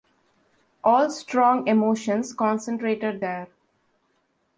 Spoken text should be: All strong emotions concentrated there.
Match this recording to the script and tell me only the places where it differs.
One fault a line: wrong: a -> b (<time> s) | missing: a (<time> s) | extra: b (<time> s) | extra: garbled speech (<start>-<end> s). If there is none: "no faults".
no faults